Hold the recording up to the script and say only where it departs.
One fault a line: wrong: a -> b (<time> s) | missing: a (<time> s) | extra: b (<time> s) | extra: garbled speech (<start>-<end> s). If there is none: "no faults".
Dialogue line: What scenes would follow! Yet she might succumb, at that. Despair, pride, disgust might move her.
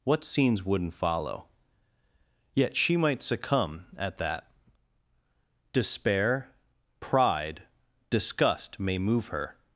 wrong: would -> wouldn't (0.6 s)
wrong: might -> may (8.8 s)